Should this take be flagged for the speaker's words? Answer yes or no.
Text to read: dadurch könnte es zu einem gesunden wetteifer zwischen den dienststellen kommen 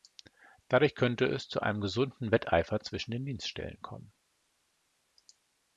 no